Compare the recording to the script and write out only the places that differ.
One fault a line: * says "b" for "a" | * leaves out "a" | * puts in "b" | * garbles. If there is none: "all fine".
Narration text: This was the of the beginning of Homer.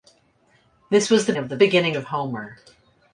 all fine